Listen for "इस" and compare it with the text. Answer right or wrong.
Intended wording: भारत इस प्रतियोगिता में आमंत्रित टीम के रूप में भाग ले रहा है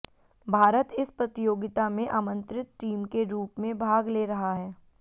right